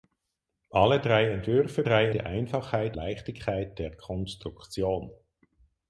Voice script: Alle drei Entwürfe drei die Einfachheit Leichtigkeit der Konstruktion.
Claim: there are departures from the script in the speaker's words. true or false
false